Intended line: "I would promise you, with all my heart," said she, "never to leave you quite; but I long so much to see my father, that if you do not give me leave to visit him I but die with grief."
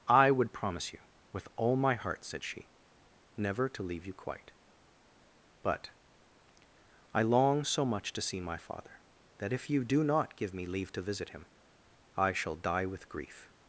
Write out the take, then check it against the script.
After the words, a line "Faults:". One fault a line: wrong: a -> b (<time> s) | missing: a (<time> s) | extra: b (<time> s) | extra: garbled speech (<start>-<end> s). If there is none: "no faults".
"I would promise you, with all my heart," said she, "never to leave you quite; but I long so much to see my father, that if you do not give me leave to visit him I shall die with grief."
Faults:
wrong: but -> shall (12.3 s)